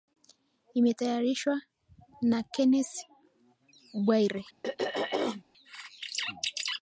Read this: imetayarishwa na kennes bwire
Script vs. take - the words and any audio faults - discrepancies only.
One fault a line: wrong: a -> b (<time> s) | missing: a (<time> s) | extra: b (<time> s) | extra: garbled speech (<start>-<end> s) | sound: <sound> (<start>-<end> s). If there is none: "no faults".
sound: throat clearing (4.6-5.4 s)